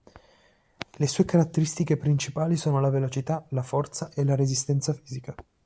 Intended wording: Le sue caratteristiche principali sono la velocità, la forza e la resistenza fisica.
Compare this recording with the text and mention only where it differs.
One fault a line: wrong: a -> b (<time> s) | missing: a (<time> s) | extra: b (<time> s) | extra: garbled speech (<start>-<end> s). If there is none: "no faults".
no faults